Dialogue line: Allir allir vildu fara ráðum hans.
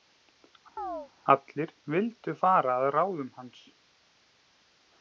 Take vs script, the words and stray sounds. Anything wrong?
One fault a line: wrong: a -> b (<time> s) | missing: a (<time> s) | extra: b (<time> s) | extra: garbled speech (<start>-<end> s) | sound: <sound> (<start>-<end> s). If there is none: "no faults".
sound: chirp (0.8-1.1 s)
missing: allir (1.7 s)
extra: að (2.8 s)